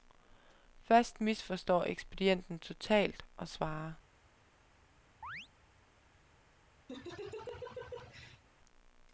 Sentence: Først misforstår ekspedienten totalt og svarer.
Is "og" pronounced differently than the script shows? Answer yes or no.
no